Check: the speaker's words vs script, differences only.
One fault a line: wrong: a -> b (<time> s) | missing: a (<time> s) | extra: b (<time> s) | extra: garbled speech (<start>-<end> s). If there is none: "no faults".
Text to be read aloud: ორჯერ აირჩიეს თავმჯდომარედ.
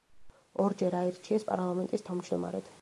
extra: პარლამენტის (1.5 s)